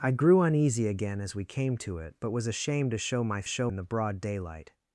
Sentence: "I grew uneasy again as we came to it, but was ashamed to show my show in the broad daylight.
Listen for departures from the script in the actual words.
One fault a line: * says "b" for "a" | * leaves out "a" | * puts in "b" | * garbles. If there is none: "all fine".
all fine